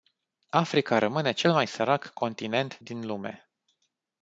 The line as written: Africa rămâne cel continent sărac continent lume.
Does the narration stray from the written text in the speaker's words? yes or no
yes